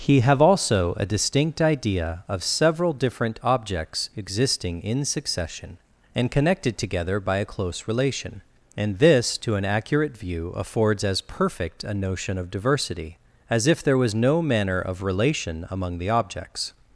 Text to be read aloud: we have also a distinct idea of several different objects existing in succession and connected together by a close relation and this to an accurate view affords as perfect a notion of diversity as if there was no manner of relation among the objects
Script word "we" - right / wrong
wrong